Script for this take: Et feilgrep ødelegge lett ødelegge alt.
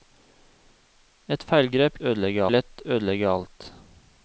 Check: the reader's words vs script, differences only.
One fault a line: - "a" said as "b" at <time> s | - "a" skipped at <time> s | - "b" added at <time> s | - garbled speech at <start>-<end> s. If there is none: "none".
none